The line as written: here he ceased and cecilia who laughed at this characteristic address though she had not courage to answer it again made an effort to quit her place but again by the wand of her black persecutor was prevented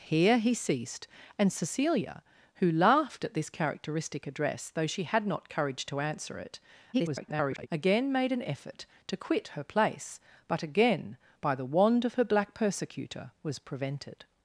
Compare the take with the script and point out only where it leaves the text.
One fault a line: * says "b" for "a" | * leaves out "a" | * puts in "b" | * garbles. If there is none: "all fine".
* garbles